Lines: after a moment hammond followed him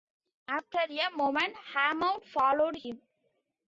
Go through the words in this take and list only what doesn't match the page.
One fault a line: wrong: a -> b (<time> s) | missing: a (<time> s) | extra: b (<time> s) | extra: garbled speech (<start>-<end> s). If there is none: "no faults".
no faults